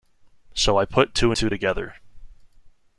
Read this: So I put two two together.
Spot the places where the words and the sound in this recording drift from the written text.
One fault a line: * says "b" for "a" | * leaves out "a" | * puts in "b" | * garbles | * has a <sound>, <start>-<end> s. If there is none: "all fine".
all fine